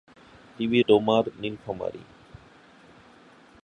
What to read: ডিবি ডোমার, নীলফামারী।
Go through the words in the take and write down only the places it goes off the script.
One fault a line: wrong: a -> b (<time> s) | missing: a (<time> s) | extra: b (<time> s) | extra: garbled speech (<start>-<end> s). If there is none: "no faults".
no faults